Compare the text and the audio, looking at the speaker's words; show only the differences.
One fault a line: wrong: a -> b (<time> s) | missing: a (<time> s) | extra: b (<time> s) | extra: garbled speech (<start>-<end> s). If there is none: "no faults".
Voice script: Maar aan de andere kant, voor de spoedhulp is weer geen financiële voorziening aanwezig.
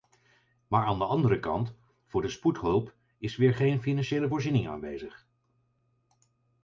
no faults